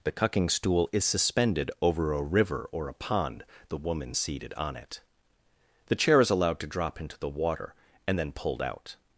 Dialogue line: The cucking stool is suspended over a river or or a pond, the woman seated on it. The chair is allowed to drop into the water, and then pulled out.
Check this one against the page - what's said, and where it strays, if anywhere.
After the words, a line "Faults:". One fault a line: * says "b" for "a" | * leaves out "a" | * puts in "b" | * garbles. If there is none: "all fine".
The cucking stool is suspended over a river or a pond, the woman seated on it. The chair is allowed to drop into the water, and then pulled out.
Faults:
* leaves out "or"